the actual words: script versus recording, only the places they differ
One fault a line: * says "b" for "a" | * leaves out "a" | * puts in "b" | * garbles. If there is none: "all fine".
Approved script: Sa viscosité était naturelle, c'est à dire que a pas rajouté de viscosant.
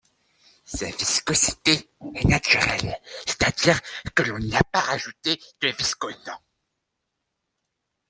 * says "est" for "était"
* puts in "l'on n'y"